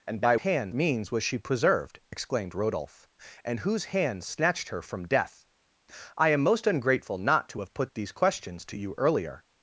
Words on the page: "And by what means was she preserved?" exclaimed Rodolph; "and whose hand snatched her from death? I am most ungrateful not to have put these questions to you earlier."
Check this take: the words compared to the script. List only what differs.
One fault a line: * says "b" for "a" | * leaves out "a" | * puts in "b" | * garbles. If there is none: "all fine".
* says "hand" for "what"